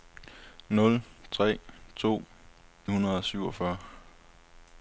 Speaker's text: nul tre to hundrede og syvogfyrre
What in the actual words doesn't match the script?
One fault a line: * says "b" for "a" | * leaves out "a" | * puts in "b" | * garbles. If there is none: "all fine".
all fine